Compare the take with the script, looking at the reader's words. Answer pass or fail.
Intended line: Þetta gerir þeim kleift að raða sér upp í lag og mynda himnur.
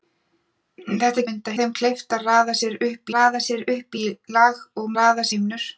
fail